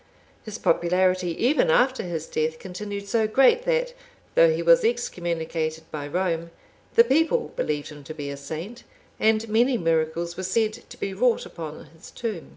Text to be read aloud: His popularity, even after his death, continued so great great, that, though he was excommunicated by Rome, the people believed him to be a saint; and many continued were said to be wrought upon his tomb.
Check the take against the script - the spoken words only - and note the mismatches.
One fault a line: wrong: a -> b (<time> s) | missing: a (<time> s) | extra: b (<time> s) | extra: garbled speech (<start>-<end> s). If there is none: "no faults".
missing: great (3.6 s)
wrong: continued -> miracles (9.8 s)